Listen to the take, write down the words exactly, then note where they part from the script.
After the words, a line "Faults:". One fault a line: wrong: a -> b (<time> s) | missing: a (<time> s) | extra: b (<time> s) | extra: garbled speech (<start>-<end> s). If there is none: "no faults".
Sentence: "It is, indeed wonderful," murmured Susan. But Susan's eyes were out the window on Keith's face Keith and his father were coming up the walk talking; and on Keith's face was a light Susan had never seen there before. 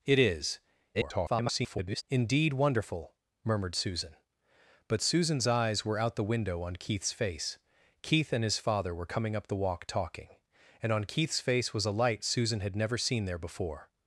"It is, [garbled] indeed wonderful," murmured Susan. But Susan's eyes were out the window on Keith's face Keith and his father were coming up the walk talking; and on Keith's face was a light Susan had never seen there before.
Faults:
extra: garbled speech (0.9-2.0 s)